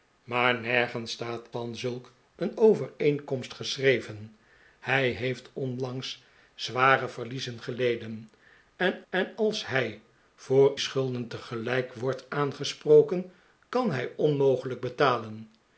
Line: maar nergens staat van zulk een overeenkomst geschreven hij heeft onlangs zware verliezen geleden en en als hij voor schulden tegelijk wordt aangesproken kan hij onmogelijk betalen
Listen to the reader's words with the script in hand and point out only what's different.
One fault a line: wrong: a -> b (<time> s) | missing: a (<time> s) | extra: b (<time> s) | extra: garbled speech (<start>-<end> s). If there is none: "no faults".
no faults